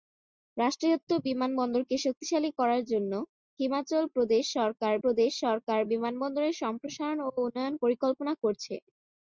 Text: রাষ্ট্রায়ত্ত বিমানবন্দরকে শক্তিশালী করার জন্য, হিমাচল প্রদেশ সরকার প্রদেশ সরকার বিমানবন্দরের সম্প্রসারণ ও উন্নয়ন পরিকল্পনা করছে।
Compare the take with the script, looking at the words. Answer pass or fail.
pass